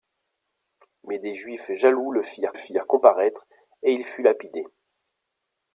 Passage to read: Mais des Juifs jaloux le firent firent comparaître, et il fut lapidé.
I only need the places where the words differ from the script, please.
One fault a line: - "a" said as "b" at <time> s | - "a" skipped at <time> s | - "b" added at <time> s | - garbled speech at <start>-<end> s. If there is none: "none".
none